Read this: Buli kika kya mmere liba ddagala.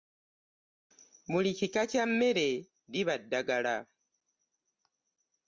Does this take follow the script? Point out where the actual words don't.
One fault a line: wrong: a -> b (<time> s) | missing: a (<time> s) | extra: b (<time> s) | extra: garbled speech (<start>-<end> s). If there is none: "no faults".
no faults